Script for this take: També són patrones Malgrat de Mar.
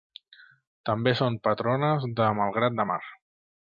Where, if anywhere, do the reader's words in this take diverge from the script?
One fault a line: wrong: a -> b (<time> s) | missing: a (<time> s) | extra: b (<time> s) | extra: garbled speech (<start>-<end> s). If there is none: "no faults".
extra: de (2.2 s)